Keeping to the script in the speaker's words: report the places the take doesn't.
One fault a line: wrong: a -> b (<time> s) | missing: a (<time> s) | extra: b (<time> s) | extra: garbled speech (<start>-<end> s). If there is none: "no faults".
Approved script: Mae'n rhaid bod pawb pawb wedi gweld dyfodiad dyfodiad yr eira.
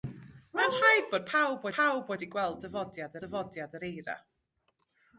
no faults